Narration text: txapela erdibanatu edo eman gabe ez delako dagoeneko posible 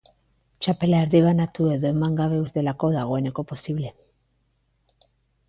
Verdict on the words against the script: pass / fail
pass